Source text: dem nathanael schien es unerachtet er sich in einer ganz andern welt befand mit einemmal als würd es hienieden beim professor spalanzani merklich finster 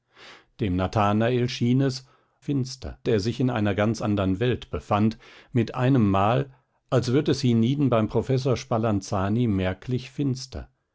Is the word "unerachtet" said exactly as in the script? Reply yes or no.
no